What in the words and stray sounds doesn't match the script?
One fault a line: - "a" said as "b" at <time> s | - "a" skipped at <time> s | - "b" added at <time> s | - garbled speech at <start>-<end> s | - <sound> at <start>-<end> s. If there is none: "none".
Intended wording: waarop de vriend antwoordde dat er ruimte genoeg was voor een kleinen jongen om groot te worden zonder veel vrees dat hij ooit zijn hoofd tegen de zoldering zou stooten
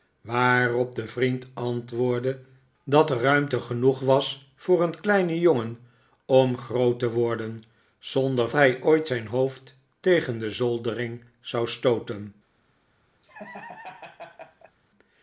- "veel vrees dat" skipped at 8.5 s
- laugh at 13.2-14.8 s